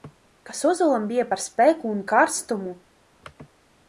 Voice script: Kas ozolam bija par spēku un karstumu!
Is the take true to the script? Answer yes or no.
yes